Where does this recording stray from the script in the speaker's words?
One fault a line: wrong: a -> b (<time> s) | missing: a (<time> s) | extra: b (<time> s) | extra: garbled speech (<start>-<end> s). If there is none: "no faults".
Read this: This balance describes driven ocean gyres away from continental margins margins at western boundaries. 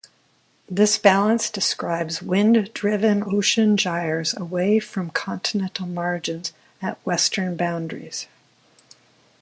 extra: wind (2.2 s)
missing: margins (6.5 s)